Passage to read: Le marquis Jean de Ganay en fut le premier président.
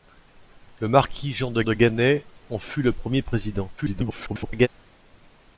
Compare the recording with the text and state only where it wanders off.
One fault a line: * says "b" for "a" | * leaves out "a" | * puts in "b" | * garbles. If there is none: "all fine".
* puts in "de"
* garbles